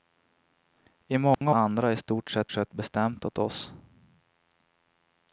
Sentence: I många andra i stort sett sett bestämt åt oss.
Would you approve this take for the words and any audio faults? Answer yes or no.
no